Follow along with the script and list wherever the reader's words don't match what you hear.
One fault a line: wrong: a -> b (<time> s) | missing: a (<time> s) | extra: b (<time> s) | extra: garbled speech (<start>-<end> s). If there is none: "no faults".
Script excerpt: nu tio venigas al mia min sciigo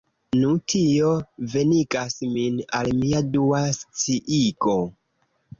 extra: min (2.4 s)
wrong: min -> dua (3.4 s)